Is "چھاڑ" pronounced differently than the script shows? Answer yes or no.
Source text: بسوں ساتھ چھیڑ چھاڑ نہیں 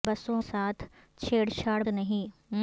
no